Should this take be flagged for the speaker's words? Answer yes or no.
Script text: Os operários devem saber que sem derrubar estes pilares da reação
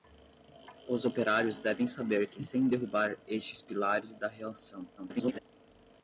yes